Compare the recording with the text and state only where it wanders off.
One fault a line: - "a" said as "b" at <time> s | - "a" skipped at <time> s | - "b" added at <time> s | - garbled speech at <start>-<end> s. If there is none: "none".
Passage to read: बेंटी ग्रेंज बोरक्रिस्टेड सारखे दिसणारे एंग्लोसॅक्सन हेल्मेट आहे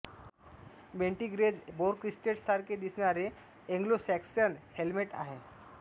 none